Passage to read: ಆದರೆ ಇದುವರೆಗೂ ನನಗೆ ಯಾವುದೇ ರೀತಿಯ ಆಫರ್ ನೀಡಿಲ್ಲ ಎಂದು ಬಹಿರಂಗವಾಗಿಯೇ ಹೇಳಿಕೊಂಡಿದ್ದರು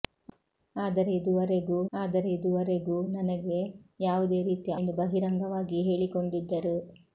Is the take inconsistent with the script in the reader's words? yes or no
yes